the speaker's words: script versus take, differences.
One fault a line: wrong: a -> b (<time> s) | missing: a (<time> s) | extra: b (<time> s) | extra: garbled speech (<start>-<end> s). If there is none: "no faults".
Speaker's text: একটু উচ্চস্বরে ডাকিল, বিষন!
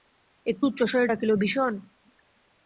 no faults